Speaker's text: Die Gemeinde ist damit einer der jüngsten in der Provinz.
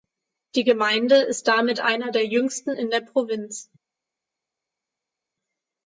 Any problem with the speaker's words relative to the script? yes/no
no